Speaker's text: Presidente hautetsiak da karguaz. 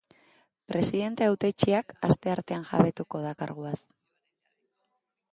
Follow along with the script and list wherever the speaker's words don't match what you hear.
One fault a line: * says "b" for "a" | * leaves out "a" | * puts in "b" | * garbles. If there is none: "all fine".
* puts in "asteartean jabetuko"